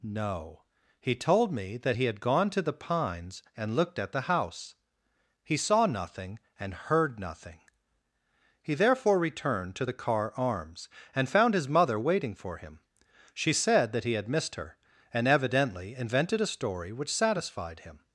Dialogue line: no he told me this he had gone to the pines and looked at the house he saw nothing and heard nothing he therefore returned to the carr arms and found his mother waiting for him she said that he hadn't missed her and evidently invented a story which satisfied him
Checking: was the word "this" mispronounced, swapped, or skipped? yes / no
yes